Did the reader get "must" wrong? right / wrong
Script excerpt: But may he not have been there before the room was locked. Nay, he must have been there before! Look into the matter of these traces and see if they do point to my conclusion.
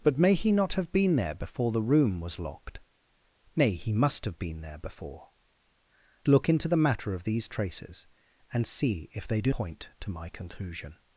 right